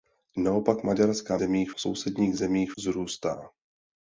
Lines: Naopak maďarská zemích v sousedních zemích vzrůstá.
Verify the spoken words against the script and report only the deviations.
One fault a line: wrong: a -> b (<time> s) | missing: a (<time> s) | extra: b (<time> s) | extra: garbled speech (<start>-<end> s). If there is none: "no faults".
no faults